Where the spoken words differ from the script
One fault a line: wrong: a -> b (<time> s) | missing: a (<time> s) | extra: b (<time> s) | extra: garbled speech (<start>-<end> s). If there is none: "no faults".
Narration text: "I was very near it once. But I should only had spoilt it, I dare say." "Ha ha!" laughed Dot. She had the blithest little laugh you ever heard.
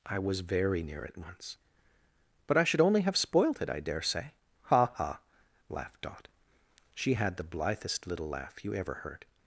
wrong: had -> have (3.0 s)